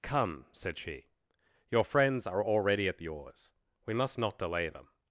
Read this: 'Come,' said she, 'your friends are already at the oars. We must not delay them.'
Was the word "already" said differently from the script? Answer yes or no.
no